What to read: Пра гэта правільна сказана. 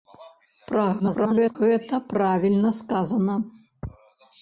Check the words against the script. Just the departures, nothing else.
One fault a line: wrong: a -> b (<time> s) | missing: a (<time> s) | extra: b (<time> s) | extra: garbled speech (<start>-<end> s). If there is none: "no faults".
extra: garbled speech (1.0-1.6 s)